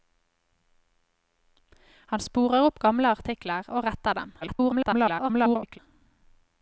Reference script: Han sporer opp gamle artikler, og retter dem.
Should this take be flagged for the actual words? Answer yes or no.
yes